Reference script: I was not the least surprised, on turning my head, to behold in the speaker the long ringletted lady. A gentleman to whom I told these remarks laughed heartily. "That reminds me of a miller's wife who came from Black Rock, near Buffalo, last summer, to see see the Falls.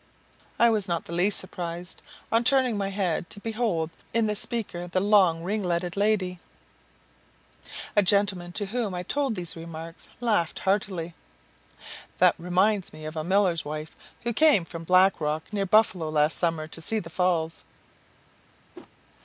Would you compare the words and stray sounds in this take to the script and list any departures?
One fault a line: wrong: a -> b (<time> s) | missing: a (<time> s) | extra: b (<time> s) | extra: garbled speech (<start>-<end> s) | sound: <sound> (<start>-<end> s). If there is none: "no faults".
missing: see (17.0 s)
sound: whoosh (18.7-18.9 s)